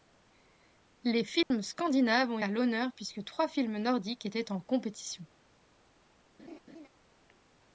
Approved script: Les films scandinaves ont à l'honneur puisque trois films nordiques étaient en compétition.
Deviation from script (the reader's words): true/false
false